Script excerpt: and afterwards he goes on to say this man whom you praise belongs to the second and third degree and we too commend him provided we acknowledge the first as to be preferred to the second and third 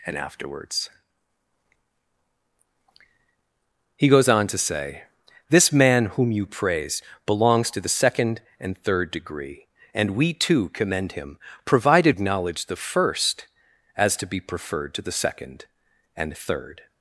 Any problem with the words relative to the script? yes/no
yes